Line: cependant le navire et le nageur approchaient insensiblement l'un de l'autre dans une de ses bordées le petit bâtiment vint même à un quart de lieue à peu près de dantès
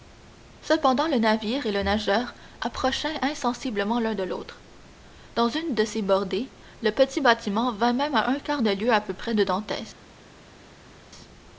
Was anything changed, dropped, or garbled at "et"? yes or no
no